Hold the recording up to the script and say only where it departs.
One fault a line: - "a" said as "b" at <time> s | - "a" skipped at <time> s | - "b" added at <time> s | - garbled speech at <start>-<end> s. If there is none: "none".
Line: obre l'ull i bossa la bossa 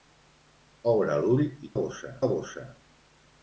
none